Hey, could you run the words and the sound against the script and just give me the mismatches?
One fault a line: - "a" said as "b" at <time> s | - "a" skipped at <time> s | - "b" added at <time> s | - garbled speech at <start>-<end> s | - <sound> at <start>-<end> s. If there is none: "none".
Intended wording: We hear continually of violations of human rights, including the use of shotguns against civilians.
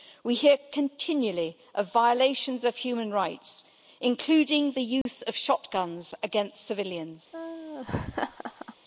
- dropout at 5.0-5.1 s
- laugh at 7.3-8.7 s